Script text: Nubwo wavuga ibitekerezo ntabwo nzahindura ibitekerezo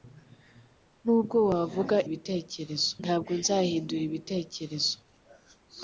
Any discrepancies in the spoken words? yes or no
no